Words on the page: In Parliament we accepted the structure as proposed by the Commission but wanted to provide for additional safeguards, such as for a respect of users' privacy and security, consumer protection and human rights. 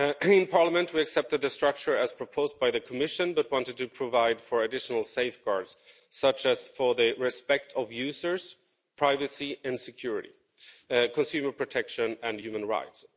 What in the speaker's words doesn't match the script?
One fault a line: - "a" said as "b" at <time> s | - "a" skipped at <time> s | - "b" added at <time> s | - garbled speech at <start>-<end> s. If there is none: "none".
- "a" said as "the" at 7.0 s